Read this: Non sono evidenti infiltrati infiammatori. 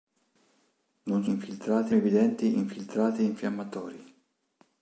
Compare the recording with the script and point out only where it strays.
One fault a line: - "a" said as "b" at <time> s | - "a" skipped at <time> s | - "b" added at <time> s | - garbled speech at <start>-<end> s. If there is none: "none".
- "sono" said as "infiltrati" at 1.3 s